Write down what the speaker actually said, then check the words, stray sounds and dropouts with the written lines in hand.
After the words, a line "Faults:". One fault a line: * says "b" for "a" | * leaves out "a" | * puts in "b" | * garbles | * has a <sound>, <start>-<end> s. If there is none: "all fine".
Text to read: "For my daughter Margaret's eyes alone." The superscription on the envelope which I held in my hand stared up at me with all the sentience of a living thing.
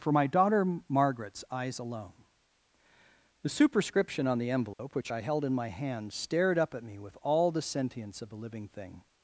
"For my daughter Margaret's eyes alone." The superscription on the envelope which I held in my hand stared up at me with all the sentience of a living thing.
Faults:
* has a dropout, 4.7-4.8 s